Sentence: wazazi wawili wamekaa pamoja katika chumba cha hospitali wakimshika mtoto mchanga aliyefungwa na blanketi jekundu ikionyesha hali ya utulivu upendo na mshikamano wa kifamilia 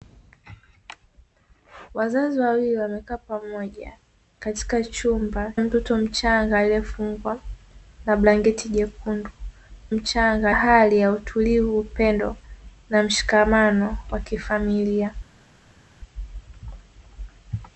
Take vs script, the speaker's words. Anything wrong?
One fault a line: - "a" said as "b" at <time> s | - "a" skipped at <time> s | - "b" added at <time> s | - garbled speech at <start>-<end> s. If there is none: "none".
- "cha hospitali wakimshika" skipped at 5.5 s
- "ikionyesha" said as "mchanga" at 9.9 s